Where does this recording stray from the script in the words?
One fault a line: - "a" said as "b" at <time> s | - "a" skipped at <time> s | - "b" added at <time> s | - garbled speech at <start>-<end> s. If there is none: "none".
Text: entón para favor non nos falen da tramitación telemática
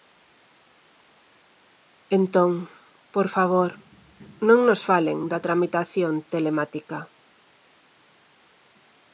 - "para" said as "por" at 3.1 s